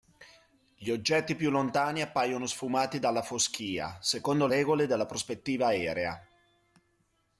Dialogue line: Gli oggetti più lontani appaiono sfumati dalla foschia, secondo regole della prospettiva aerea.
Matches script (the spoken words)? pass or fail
pass